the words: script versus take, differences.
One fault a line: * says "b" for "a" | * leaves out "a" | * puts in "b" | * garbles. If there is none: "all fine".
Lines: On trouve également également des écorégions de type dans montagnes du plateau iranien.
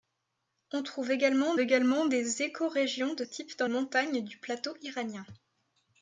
all fine